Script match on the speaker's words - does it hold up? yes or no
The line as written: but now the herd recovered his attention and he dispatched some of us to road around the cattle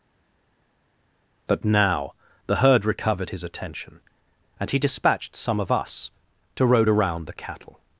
yes